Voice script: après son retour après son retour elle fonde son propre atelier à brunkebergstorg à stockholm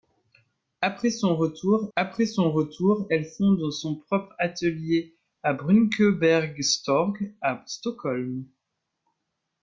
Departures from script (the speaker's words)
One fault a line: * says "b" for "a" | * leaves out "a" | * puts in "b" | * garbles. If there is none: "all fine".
all fine